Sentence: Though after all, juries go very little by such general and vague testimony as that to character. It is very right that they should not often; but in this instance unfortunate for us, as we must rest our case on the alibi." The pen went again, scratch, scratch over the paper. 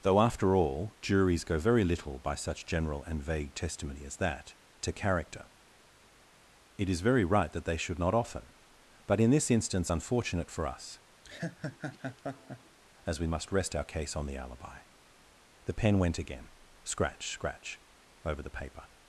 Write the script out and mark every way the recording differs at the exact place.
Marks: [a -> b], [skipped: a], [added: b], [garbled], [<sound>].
Though after all, juries go very little by such general and vague testimony as that to character. It is very right that they should not often; but in this instance unfortunate for us, [laugh] as we must rest our case on the alibi." The pen went again, scratch, scratch over the paper.